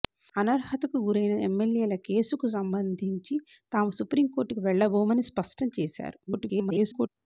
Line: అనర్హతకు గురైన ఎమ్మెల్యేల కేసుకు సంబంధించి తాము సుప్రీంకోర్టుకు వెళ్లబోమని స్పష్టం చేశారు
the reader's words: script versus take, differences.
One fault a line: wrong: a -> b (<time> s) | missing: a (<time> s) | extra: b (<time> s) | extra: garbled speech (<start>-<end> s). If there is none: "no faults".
extra: garbled speech (6.3-7.1 s)